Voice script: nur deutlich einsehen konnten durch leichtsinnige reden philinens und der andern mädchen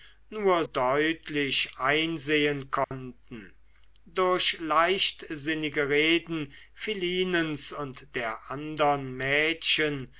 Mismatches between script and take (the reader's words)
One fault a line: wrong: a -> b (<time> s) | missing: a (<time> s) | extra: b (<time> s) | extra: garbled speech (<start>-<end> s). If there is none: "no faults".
no faults